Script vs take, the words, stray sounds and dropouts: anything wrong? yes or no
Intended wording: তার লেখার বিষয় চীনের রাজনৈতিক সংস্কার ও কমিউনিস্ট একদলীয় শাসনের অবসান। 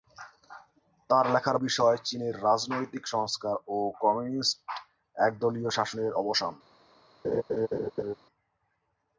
yes